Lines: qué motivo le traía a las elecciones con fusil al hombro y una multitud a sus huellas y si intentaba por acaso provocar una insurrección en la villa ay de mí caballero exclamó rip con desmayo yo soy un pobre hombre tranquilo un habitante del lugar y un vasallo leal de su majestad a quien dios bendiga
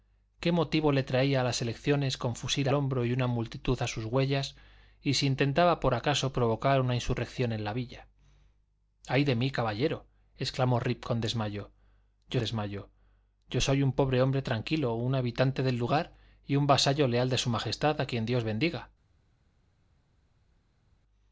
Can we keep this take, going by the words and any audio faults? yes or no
no